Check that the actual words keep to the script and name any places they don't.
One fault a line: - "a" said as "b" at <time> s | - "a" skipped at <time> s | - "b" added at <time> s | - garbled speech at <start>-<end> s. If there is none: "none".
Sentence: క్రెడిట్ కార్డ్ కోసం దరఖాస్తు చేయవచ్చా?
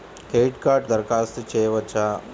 - "కోసం" skipped at 0.9 s